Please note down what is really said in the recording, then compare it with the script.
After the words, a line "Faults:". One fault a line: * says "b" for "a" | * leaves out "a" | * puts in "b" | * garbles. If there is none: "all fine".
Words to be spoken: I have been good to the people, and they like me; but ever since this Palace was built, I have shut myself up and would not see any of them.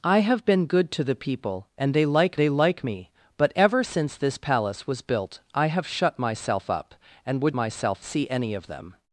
I have been good to the people, and they like they like me; but ever since this Palace was built, I have shut myself up and would myself see any of them.
Faults:
* puts in "they like"
* says "myself" for "not"